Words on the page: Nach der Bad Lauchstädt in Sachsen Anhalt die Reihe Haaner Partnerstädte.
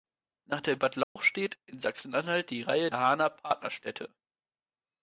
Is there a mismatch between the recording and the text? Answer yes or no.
no